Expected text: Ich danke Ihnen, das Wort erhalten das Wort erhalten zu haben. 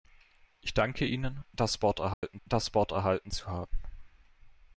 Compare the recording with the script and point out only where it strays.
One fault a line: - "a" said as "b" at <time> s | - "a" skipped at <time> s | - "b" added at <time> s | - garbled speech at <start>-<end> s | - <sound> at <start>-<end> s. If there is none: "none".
- dropout at 2.1-2.2 s